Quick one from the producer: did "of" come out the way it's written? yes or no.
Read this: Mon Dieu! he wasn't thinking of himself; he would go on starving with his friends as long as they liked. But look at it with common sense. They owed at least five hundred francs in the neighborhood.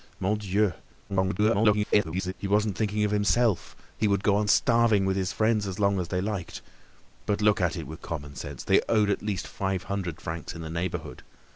yes